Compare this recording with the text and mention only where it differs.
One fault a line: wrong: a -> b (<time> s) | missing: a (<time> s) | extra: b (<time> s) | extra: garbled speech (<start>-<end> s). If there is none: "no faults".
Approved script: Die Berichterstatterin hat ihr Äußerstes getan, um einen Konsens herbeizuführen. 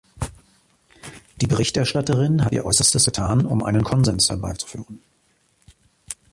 no faults